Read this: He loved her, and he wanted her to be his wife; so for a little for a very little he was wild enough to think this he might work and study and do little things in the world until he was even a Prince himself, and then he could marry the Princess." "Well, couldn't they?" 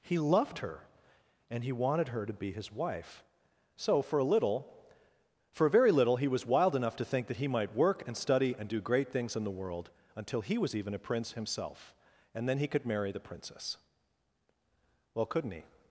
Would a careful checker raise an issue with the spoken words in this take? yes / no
yes